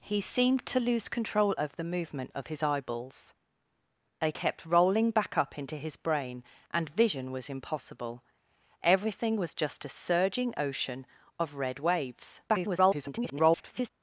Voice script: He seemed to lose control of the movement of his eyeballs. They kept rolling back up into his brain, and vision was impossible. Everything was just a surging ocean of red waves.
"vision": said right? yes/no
yes